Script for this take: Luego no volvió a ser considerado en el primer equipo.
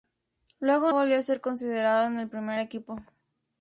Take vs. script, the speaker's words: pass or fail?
fail